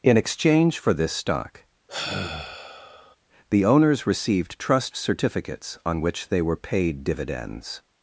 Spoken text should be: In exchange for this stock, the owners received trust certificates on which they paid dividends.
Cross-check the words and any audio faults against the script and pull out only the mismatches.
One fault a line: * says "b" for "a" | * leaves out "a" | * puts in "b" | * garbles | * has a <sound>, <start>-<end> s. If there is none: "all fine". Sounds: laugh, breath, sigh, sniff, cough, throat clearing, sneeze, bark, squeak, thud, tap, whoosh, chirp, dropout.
* has a sigh, 1.9-3.2 s
* puts in "were"